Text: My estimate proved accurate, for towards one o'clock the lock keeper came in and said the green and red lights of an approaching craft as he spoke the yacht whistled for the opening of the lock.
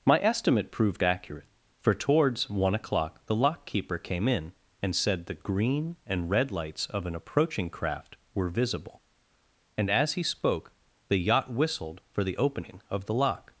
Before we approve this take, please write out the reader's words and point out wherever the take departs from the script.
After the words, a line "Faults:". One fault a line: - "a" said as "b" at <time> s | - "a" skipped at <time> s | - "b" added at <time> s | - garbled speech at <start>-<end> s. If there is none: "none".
My estimate proved accurate, for towards one o'clock the lock keeper came in and said the green and red lights of an approaching craft were visible, and as he spoke the yacht whistled for the opening of the lock.
Faults:
- "were visible and" added at 8.3 s